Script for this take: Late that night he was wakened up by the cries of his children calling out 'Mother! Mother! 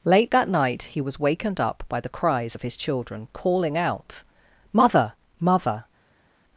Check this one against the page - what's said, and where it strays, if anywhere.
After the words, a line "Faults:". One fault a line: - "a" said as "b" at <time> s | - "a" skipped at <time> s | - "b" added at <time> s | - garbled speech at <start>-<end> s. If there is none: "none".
Late that night he was wakened up by the cries of his children calling out 'Mother! Mother!
Faults:
none